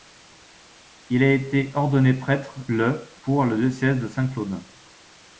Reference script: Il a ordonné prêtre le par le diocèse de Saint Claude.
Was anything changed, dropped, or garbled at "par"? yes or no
yes